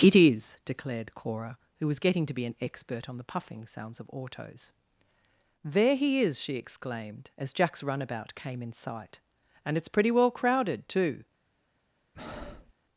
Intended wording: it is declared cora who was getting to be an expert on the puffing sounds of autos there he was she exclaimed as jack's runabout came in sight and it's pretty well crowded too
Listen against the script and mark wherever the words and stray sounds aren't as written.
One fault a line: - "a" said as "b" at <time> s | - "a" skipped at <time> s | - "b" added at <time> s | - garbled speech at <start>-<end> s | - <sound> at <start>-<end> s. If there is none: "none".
- "was" said as "is" at 6.2 s
- breath at 12.1-12.7 s